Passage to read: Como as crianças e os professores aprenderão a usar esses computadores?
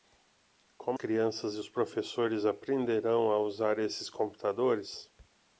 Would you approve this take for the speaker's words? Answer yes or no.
no